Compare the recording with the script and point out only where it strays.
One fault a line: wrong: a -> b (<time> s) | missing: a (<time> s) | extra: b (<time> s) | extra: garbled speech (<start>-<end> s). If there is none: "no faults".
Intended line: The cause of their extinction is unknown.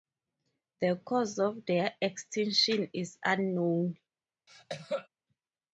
no faults